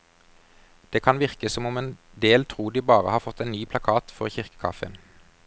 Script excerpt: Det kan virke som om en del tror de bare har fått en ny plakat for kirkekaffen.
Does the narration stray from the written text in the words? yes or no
no